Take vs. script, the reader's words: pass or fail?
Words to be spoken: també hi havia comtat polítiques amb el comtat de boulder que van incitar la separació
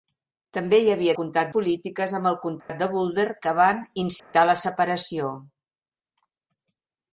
pass